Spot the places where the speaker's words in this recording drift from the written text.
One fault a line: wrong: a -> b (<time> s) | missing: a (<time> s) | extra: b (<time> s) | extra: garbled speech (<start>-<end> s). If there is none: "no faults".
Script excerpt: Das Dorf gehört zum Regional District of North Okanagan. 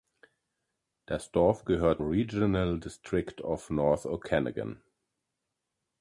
missing: zum (2.0 s)